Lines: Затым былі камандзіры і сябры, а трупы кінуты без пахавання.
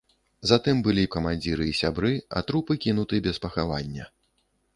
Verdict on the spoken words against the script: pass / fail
pass